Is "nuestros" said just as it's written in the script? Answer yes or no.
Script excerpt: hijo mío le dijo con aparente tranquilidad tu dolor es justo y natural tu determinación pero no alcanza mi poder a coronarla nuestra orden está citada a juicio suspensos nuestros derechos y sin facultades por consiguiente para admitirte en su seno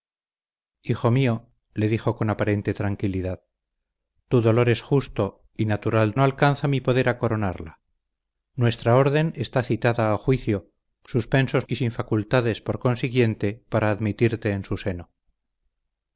no